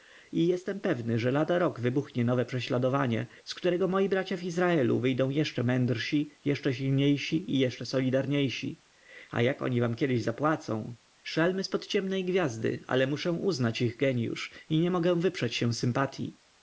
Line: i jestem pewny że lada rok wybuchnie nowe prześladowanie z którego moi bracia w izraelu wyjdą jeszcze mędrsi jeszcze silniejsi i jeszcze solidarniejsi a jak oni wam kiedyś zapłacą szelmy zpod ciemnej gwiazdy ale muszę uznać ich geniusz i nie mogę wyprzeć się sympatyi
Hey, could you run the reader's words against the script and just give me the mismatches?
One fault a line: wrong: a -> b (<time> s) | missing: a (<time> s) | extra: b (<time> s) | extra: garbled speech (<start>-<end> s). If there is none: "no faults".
no faults